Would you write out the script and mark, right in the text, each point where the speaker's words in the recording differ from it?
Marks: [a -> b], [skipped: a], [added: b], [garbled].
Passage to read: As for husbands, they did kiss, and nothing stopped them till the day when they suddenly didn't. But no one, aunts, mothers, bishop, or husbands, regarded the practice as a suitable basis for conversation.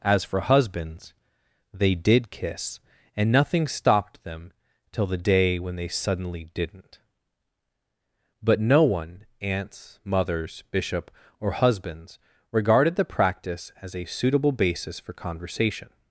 As for husbands, they did kiss, and nothing stopped them till the day when they suddenly didn't. But no one, aunts, mothers, bishop, or husbands, regarded the practice as a suitable basis for conversation.